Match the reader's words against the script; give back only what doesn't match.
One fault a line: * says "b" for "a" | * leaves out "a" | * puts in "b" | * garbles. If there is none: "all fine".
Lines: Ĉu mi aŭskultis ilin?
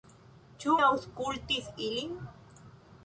* leaves out "mi"